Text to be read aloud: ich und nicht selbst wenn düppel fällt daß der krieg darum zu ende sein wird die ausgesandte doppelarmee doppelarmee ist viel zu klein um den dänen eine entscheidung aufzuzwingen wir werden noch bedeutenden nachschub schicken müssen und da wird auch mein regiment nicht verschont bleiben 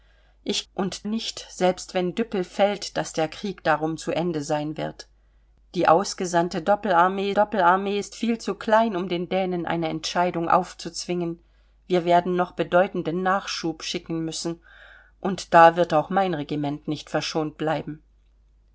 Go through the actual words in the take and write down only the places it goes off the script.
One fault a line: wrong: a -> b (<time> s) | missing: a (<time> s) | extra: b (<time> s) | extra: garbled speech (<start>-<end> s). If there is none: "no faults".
no faults